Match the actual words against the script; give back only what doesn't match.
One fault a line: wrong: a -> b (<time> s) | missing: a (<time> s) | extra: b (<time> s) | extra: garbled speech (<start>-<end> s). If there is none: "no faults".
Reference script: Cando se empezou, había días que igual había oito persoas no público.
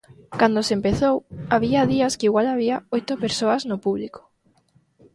no faults